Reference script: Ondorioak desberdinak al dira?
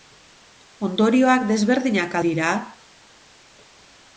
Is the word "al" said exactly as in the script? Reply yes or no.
no